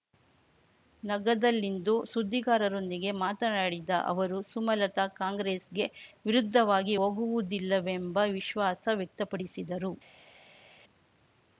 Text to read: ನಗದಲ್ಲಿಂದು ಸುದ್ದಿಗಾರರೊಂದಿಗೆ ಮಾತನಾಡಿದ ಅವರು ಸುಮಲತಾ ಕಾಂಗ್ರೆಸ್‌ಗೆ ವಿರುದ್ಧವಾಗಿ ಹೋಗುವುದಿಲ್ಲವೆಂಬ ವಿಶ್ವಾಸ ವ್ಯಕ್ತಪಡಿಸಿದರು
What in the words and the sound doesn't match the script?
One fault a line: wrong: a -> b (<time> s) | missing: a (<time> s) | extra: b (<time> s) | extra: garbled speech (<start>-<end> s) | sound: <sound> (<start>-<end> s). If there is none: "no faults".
no faults